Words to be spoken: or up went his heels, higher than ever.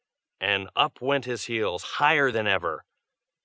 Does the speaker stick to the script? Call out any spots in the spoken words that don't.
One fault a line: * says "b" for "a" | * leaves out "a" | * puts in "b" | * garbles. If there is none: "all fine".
* says "and" for "or"